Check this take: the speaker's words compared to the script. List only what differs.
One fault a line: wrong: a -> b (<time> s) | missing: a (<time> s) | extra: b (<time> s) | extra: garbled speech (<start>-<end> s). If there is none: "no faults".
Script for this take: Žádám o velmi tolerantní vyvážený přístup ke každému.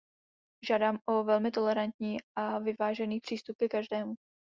extra: a (2.4 s)